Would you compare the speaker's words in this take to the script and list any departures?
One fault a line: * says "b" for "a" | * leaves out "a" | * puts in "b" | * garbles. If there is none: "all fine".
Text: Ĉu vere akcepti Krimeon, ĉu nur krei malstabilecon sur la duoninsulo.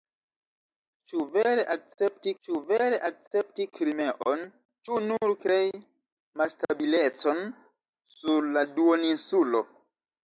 * puts in "ĉu vere akcepti"